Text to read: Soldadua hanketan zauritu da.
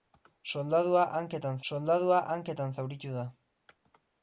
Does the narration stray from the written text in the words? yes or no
yes